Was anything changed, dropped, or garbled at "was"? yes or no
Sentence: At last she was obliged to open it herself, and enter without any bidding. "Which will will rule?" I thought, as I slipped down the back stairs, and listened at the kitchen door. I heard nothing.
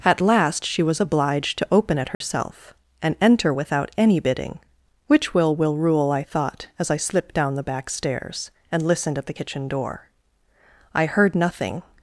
no